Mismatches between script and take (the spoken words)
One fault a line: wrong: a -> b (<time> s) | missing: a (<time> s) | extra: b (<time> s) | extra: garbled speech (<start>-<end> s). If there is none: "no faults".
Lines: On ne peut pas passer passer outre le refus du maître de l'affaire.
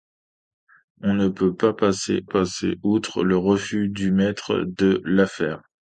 no faults